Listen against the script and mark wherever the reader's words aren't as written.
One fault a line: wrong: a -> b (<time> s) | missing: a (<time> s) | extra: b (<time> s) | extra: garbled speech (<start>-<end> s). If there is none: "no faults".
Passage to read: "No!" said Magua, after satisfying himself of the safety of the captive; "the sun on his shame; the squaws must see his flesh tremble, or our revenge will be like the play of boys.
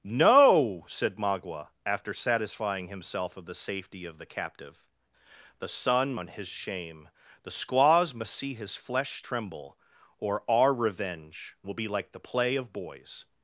no faults